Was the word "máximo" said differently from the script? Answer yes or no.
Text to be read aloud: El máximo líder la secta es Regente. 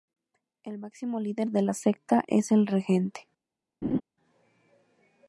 no